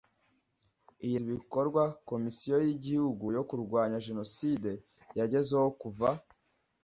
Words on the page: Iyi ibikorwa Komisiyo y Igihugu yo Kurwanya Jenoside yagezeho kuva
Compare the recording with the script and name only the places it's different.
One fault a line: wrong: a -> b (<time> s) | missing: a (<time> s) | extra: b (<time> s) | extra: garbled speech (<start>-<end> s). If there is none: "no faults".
no faults